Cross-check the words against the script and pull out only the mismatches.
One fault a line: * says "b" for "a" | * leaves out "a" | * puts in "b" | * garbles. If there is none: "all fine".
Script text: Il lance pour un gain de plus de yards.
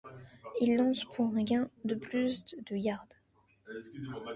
all fine